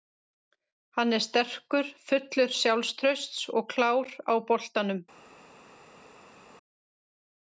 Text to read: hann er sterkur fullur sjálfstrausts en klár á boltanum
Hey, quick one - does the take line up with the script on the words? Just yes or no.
no